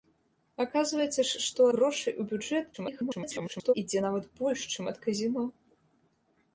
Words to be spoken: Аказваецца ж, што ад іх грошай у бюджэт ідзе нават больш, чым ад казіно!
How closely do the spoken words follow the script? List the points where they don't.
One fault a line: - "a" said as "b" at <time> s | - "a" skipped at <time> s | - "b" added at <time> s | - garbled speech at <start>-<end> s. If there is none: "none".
- "ад іх" skipped at 1.7 s
- garbled speech at 2.7-3.7 s